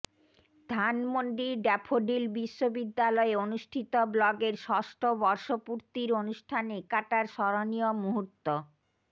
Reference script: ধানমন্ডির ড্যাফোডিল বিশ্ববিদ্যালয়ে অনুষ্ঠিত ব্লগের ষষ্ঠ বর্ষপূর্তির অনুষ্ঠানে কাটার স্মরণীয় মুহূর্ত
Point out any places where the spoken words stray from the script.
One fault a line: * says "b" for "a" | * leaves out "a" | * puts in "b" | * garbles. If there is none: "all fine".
all fine